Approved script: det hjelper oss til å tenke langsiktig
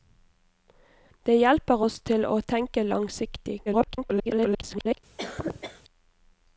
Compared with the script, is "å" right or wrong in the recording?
right